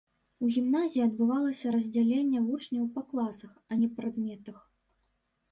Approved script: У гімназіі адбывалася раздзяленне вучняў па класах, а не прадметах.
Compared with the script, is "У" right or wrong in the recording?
right